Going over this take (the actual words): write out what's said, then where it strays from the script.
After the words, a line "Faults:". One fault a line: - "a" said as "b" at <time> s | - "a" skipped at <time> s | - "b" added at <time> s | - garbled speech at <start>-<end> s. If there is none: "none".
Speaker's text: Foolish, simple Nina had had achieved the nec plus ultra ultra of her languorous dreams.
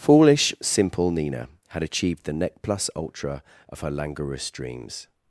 Foolish, simple Nina had achieved the nec plus ultra of her languorous dreams.
Faults:
- "had" skipped at 1.8 s
- "ultra" skipped at 3.4 s